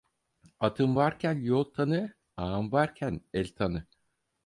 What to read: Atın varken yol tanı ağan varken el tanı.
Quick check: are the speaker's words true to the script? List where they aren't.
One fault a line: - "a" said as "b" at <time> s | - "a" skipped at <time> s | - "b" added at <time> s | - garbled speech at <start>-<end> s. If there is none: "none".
none